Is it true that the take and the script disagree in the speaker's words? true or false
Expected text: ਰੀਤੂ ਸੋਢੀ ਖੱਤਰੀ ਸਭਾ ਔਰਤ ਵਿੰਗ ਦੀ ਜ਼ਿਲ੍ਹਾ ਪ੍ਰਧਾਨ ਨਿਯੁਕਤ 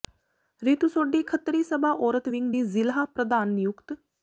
false